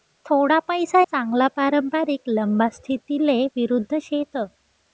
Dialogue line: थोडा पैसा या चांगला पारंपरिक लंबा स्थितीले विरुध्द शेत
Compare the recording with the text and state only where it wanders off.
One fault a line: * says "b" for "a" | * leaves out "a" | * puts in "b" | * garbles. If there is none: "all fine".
* leaves out "या"